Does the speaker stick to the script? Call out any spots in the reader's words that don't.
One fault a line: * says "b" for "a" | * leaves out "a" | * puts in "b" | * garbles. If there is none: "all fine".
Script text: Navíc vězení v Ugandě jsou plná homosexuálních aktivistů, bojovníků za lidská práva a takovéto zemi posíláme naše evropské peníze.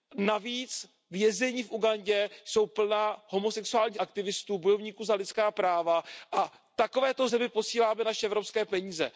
all fine